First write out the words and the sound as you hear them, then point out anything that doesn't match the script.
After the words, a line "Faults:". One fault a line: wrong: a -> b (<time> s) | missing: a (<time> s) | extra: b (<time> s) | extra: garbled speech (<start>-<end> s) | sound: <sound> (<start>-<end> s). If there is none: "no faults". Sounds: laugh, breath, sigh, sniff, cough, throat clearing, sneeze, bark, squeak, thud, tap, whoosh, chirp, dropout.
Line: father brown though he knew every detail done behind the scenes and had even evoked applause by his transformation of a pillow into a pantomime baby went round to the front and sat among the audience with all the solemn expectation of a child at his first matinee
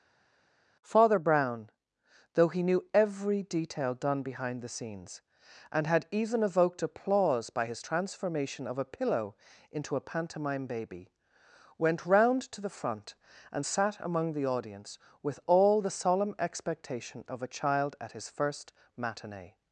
father brown though he knew every detail done behind the scenes and had even evoked applause by his transformation of a pillow into a pantomime baby went round to the front and sat among the audience with all the solemn expectation of a child at his first matinee
Faults:
no faults